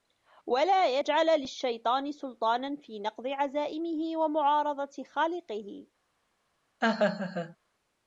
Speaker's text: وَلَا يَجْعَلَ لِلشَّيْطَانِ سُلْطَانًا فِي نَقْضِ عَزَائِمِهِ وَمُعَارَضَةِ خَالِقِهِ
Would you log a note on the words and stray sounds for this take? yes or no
yes